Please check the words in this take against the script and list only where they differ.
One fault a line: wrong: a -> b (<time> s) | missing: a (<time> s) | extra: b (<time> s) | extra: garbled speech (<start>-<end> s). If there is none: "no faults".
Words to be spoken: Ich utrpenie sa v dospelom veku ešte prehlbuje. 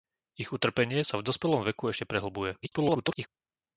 extra: garbled speech (2.6-3.3 s)